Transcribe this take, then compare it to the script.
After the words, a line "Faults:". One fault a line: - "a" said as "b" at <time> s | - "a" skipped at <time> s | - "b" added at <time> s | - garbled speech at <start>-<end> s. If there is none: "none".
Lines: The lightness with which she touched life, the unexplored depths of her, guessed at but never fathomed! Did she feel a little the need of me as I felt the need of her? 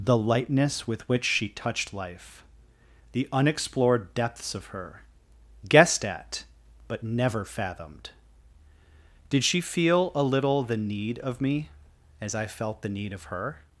The lightness with which she touched life, the unexplored depths of her, guessed at but never fathomed! Did she feel a little the need of me as I felt the need of her?
Faults:
none